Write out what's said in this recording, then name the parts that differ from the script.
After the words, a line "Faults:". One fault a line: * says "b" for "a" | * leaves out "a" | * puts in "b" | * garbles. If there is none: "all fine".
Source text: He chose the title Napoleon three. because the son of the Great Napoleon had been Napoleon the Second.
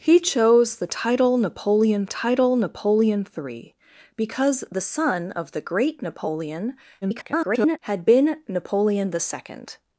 He chose the title Napoleon title Napoleon three. because the son of the Great Napoleon [garbled] had been Napoleon the Second.
Faults:
* puts in "title Napoleon"
* garbles